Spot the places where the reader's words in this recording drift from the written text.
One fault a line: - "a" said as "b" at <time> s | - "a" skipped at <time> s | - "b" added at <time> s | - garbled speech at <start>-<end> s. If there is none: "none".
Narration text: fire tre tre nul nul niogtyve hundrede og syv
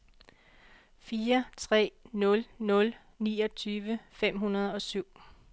- "tre" skipped at 1.9 s
- "fem" added at 4.1 s